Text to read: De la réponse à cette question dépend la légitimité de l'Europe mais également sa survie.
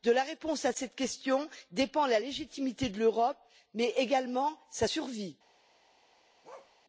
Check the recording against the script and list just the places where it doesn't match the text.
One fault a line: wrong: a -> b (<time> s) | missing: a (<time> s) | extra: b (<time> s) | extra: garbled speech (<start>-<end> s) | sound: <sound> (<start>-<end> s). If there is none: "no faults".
sound: bark (6.4-6.7 s)